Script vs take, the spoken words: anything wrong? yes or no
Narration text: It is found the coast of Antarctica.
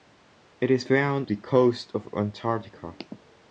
no